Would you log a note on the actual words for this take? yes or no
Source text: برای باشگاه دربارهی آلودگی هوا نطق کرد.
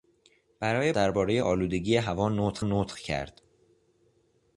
yes